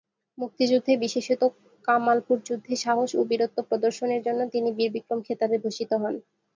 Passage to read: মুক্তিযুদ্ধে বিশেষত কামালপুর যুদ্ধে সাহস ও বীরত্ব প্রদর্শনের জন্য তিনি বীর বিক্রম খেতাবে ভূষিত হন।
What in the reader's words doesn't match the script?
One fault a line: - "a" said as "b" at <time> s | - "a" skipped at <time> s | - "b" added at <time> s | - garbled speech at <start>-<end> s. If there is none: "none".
none